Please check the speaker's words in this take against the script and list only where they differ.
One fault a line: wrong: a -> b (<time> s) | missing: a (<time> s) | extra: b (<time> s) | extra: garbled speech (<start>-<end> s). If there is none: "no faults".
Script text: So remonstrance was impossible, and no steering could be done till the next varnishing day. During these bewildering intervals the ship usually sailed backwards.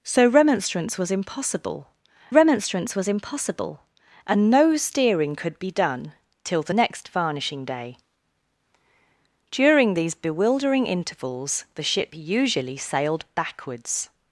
extra: remonstrance was impossible (2.3 s)